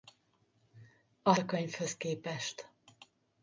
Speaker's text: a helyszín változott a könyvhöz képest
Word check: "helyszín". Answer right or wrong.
wrong